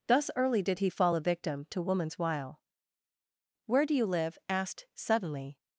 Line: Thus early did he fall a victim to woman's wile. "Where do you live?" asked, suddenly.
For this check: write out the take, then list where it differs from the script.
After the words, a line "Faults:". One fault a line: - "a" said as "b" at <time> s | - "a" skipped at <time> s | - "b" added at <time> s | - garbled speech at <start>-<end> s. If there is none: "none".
Thus early did he fall a victim to woman's wile. "Where do you live?" asked, suddenly.
Faults:
none